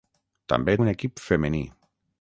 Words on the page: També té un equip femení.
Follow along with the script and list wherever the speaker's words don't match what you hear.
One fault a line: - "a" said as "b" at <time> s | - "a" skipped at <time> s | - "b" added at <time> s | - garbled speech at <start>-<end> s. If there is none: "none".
- "té" skipped at 0.8 s